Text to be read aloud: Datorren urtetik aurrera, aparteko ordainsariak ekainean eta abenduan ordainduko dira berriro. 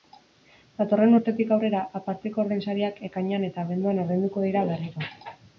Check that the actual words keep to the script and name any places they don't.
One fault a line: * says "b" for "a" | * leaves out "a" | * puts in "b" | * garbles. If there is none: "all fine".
all fine